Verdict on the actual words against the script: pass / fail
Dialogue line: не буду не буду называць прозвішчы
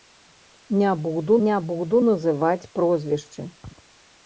pass